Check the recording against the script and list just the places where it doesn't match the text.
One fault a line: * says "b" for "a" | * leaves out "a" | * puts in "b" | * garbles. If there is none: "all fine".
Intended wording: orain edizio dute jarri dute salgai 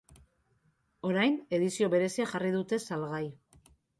* says "berezia" for "dute"